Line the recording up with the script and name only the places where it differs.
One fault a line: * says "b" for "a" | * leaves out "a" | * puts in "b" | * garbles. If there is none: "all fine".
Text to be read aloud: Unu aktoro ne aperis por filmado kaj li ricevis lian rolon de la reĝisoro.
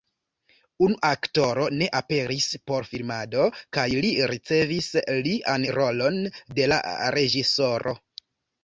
all fine